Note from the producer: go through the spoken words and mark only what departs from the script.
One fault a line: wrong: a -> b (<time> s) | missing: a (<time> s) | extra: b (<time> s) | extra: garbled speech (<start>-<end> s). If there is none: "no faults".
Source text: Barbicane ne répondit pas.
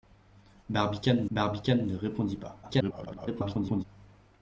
extra: barbicane (1.3 s)
extra: garbled speech (2.6-3.8 s)